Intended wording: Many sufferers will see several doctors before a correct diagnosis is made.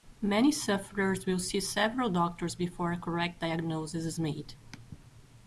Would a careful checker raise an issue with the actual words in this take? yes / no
no